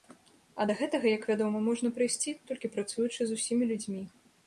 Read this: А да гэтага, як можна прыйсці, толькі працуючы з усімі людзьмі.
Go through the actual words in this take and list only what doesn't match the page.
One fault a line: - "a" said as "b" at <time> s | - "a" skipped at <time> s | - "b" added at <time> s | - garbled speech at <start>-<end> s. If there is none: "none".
- "вядома" added at 1.3 s